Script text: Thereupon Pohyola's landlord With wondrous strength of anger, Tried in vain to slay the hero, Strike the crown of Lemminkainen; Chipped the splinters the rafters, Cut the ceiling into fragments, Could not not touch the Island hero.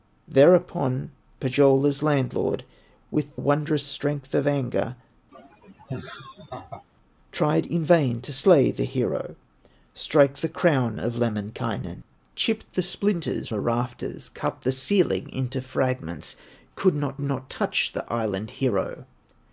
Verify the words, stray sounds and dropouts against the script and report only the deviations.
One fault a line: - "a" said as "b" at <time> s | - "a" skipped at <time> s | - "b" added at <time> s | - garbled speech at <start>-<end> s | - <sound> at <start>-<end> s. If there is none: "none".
- laugh at 5.3-6.8 s